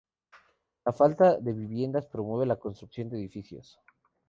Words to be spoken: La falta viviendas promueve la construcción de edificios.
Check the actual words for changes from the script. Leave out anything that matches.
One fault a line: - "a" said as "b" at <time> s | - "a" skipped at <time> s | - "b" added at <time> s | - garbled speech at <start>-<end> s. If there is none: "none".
- "de" added at 1.4 s